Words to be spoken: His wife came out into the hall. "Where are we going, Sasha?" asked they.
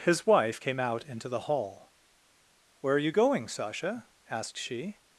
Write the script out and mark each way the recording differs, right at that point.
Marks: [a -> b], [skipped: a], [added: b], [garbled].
His wife came out into the hall. "Where are [we -> you] going, Sasha?" asked [they. -> she]